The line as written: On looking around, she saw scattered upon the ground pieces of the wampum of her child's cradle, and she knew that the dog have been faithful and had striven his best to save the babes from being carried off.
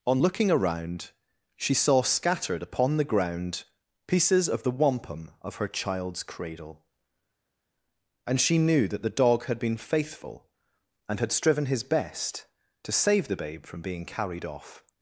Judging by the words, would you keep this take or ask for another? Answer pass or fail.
fail